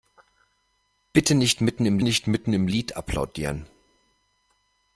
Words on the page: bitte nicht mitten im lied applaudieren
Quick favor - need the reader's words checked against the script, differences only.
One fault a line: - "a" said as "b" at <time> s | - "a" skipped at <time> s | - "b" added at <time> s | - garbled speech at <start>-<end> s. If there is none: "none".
- "nicht mitten im" added at 2.0 s